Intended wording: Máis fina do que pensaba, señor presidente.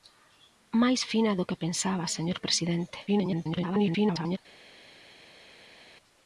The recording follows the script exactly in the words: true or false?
false